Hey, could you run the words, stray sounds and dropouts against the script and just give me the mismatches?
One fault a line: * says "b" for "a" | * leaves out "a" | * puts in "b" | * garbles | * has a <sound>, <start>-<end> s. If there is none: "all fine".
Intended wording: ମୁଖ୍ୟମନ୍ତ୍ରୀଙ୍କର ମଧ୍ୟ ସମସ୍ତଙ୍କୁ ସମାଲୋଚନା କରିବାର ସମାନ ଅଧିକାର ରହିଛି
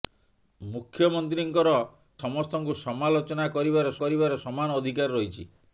* leaves out "ମଧ୍ୟ"
* puts in "କରିବାର"